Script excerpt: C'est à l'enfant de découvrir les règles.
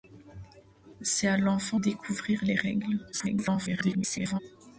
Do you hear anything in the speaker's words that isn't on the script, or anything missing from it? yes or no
yes